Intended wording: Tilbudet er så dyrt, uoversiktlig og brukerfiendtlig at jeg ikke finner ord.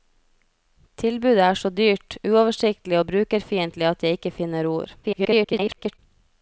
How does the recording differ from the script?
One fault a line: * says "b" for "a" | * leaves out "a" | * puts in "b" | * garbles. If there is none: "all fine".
* garbles